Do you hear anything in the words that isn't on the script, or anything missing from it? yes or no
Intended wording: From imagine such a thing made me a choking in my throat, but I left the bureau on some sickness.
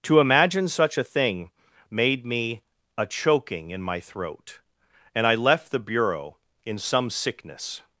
yes